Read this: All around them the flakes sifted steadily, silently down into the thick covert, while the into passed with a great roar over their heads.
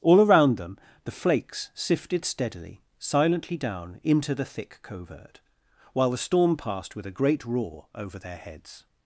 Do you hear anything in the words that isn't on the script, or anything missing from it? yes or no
yes